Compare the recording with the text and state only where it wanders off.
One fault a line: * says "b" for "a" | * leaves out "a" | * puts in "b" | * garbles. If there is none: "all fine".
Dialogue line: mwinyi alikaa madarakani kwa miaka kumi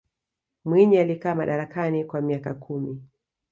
all fine